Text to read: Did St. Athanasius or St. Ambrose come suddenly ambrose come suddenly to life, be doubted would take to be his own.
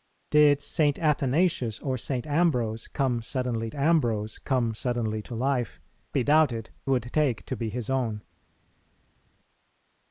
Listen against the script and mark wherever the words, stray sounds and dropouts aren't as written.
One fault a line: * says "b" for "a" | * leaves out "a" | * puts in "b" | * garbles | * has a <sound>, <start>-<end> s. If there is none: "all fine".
all fine